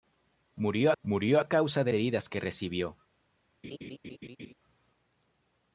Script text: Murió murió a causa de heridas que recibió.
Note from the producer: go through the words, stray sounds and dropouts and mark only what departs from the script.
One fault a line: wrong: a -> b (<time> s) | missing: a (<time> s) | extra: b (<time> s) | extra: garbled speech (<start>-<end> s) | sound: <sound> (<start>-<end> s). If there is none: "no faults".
sound: laugh (3.6-4.5 s)